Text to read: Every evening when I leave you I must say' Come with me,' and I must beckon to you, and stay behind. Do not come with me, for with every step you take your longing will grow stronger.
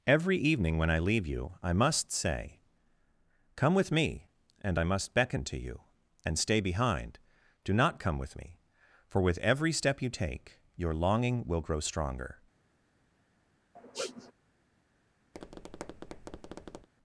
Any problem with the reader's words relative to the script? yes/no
no